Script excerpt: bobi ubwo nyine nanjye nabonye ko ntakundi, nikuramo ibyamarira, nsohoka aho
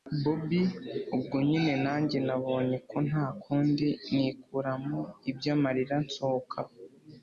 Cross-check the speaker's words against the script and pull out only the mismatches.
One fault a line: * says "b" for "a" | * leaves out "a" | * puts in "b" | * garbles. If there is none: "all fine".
all fine